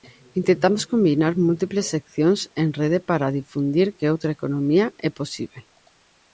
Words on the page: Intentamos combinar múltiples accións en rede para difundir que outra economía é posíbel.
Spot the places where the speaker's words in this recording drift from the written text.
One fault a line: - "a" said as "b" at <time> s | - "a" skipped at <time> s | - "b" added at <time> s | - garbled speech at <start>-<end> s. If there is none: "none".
none